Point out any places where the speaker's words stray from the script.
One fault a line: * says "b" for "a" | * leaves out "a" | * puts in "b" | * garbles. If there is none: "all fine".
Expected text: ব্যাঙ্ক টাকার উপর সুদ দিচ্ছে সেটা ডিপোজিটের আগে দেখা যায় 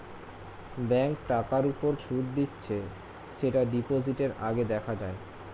all fine